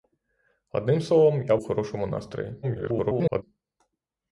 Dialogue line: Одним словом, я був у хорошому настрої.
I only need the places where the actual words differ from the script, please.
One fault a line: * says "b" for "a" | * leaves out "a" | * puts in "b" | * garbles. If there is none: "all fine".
* leaves out "був"
* garbles